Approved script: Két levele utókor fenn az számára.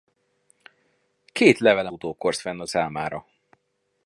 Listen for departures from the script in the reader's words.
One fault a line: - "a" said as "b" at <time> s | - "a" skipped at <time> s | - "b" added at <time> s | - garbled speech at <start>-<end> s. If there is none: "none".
none